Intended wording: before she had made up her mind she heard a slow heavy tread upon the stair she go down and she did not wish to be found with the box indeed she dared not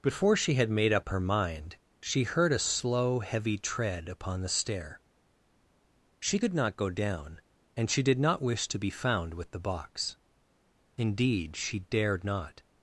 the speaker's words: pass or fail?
fail